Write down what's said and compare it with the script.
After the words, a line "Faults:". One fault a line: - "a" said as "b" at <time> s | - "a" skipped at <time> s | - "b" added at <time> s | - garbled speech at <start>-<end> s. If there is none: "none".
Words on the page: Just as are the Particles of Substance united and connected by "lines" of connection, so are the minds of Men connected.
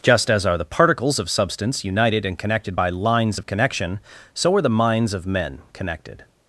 Just as are the Particles of Substance united and connected by "lines" of connection, so are the minds of Men connected.
Faults:
none